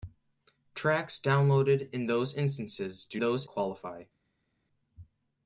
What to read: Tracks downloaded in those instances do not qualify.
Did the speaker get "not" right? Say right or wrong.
wrong